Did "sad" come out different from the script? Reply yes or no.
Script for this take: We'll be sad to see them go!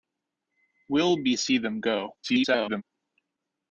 yes